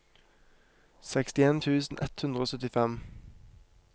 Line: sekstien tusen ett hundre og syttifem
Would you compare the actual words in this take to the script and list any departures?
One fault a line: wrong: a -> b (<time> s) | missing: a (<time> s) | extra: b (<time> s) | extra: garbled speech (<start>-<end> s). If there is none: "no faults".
no faults